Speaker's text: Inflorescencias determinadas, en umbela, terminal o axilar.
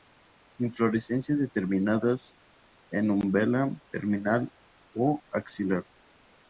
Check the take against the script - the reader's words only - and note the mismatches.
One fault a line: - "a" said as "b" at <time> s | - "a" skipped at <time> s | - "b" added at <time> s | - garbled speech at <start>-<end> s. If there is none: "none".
none